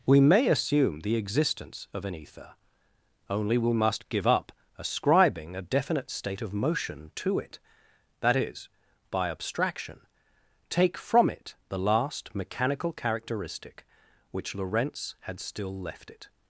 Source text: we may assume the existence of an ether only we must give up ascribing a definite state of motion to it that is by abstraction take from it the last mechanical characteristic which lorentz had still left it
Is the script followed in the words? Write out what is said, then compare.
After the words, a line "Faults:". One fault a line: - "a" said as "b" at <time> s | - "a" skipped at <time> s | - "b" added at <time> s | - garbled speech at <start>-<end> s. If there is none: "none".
we may assume the existence of an ether only we must give up ascribing a definite state of motion to it that is by abstraction take from it the last mechanical characteristic which lorentz had still left it
Faults:
none